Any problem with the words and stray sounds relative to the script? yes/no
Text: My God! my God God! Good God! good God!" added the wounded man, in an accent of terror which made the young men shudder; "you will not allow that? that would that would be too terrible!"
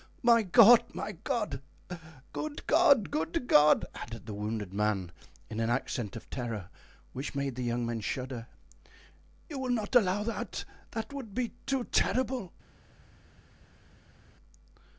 yes